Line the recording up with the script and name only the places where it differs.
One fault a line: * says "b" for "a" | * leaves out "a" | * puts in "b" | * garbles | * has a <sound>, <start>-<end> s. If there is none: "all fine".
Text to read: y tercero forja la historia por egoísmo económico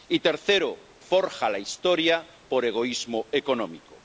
all fine